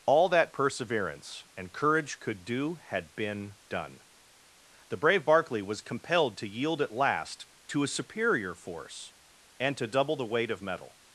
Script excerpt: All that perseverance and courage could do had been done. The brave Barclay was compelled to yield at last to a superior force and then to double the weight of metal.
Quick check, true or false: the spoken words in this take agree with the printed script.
false